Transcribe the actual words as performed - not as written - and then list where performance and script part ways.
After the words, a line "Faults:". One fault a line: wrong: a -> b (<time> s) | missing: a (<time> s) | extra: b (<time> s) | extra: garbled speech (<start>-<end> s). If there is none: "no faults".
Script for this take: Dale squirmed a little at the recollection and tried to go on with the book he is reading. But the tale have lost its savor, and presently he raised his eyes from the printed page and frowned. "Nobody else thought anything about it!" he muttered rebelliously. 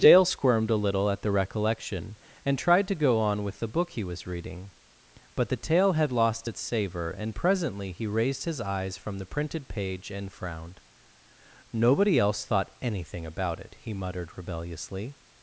Dale squirmed a little at the recollection and tried to go on with the book he was reading. But the tale had lost its savor, and presently he raised his eyes from the printed page and frowned. "Nobody else thought anything about it!" he muttered rebelliously.
Faults:
wrong: is -> was (4.0 s)
wrong: have -> had (5.9 s)